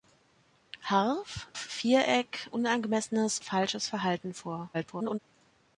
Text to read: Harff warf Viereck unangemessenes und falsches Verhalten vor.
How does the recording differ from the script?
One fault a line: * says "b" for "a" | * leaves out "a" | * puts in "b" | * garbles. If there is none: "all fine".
* leaves out "warf"
* leaves out "und"
* garbles